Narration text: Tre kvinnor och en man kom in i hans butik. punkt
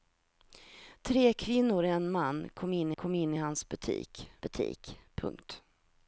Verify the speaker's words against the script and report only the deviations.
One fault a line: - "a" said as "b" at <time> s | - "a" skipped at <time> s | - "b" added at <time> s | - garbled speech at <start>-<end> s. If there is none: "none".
- "kom in" added at 2.9 s
- "butik" added at 4.4 s